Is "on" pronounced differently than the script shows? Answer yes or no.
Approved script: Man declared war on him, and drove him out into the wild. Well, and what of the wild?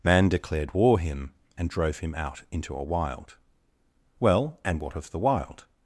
yes